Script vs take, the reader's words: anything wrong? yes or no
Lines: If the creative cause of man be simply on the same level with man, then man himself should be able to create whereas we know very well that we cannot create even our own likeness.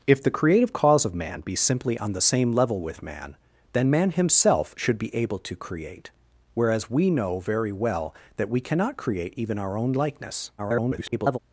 yes